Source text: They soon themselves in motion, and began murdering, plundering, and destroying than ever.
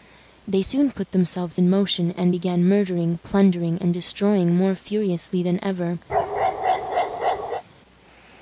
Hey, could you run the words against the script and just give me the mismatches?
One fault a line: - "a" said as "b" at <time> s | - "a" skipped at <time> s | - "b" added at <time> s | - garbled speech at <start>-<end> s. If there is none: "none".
- "put" added at 0.9 s
- "more furiously" added at 4.5 s